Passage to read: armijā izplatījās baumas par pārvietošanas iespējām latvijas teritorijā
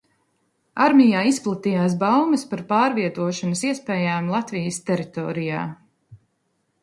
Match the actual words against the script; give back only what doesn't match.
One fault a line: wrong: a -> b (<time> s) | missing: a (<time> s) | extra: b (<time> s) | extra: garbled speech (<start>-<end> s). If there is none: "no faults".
no faults